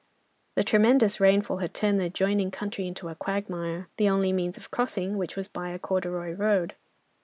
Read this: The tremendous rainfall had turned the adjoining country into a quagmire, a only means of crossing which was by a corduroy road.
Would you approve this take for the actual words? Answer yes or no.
no